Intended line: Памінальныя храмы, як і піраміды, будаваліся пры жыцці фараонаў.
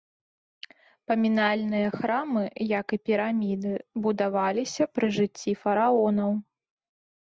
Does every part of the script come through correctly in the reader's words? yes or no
yes